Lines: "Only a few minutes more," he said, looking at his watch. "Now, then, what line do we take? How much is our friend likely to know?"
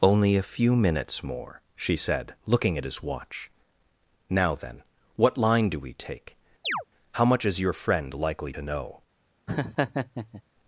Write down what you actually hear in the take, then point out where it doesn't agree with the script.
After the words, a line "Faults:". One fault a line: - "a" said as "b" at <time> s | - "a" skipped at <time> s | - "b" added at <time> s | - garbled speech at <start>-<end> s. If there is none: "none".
"Only a few minutes more," she said, looking at his watch. "Now, then, what line do we take? How much is your friend likely to know?"
Faults:
- "he" said as "she" at 1.8 s
- "our" said as "your" at 7.6 s